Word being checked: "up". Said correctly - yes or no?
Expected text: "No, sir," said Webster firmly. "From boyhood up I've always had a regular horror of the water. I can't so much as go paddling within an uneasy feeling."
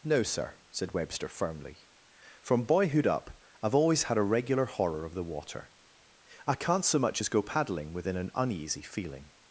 yes